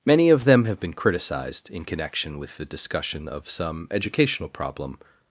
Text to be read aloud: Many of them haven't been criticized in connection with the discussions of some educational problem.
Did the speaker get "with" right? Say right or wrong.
right